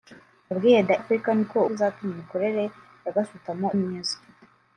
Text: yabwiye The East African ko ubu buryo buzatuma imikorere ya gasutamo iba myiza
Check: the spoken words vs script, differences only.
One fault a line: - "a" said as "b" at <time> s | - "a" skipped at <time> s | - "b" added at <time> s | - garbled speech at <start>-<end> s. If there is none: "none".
- "East" skipped at 0.9 s
- "ubu buryo" skipped at 1.6 s
- "iba" skipped at 3.7 s